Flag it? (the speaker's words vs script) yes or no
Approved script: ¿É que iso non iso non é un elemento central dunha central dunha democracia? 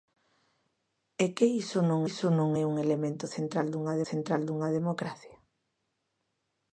no